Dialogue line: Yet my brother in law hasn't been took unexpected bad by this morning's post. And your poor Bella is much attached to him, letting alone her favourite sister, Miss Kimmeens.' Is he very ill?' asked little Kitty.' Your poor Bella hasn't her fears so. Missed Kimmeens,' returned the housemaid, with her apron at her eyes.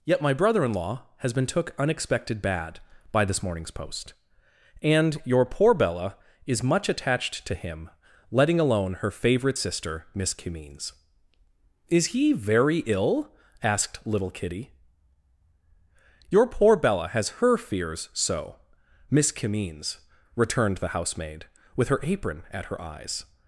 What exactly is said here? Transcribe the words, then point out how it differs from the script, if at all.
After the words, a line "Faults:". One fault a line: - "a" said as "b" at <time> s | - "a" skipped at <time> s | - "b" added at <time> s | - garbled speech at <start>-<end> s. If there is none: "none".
Yet my brother in law has been took unexpected bad by this morning's post. And your poor Bella is much attached to him, letting alone her favourite sister, Miss Kimmeens.' Is he very ill?' asked little Kitty.' Your poor Bella has her fears so. Miss Kimmeens,' returned the housemaid, with her apron at her eyes.
Faults:
- "hasn't" said as "has" at 1.2 s
- "hasn't" said as "has" at 17.1 s
- "Missed" said as "Miss" at 19.1 s